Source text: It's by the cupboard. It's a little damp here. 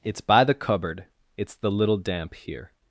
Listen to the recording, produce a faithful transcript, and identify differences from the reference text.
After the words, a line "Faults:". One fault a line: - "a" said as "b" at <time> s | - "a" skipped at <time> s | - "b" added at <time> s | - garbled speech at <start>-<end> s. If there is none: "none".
It's by the cupboard. It's the little damp here.
Faults:
- "a" said as "the" at 1.5 s